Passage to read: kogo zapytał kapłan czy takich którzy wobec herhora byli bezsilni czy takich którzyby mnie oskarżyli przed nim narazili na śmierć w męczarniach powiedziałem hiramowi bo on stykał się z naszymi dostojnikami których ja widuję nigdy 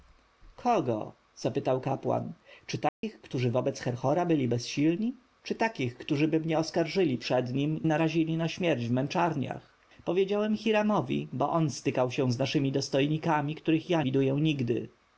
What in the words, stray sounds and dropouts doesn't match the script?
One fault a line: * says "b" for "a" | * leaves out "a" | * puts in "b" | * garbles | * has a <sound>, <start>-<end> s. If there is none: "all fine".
* has a dropout, 2.9-3.0 s